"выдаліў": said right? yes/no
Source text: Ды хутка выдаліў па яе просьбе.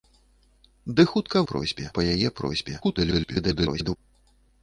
no